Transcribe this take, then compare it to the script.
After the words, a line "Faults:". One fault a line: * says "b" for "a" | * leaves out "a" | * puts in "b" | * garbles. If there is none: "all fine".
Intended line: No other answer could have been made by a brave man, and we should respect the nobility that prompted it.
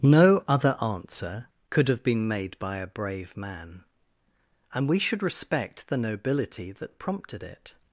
No other answer could have been made by a brave man, and we should respect the nobility that prompted it.
Faults:
all fine